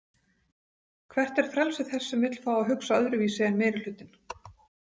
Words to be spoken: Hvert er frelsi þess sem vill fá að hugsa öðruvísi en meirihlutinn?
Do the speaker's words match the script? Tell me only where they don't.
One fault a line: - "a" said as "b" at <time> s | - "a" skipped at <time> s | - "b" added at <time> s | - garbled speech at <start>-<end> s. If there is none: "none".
none